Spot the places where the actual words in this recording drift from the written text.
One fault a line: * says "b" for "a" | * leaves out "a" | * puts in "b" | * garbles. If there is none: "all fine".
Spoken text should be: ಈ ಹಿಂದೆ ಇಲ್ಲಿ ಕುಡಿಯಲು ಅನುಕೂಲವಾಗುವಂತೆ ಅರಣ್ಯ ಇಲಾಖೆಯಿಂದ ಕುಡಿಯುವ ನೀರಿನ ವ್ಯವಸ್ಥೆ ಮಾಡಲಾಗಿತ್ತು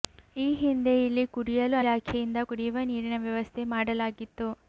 * leaves out "ಅನುಕೂಲವಾಗುವಂತೆ ಅರಣ್ಯ"